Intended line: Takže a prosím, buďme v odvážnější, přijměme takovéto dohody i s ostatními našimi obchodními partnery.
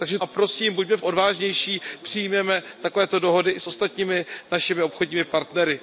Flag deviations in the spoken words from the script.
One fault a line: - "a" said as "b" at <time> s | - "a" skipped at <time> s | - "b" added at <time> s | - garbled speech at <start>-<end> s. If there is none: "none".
none